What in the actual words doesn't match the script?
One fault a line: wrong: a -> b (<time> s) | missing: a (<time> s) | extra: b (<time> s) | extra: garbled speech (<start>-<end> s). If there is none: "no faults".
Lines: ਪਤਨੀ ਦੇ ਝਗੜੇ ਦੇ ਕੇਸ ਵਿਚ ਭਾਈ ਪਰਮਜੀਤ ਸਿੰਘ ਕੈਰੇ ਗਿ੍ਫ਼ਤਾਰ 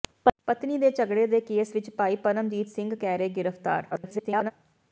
extra: garbled speech (3.9-4.5 s)